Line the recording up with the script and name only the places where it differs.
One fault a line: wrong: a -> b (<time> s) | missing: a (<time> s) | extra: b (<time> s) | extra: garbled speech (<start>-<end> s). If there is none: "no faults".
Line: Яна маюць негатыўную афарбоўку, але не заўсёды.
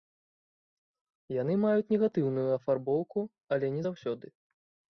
wrong: Яна -> Яны (1.4 s)